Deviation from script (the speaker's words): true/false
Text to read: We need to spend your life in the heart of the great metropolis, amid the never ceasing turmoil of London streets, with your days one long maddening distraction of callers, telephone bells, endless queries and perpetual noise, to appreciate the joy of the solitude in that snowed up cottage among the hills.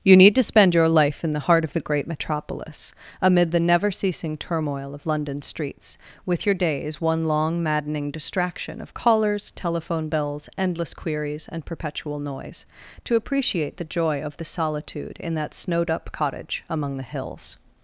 true